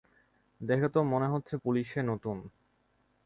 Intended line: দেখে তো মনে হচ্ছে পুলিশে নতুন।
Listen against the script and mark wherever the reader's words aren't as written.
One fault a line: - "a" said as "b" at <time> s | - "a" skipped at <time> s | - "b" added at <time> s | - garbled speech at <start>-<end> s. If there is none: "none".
none